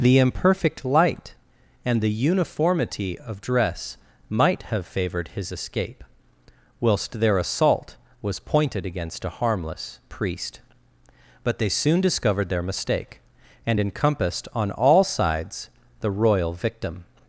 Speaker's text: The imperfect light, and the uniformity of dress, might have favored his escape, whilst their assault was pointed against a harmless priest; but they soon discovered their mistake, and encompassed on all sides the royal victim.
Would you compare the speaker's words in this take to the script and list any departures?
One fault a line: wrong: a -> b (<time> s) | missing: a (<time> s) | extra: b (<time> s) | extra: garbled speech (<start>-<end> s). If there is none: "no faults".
no faults